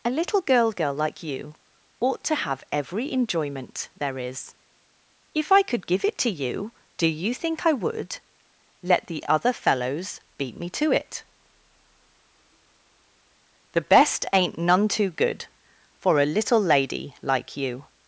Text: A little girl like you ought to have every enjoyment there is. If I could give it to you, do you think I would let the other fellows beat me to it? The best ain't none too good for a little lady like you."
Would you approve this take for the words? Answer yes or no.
no